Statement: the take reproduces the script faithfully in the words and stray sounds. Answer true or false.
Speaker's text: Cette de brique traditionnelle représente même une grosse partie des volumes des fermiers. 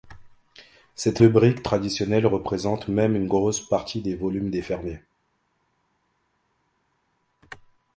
true